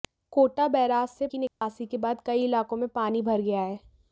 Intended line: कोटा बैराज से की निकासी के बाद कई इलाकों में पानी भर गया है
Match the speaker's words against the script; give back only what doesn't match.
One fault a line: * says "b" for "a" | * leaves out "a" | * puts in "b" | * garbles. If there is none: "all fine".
all fine